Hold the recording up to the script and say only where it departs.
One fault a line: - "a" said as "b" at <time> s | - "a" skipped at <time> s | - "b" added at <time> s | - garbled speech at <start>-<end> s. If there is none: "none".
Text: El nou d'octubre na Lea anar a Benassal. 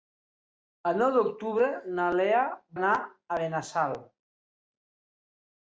none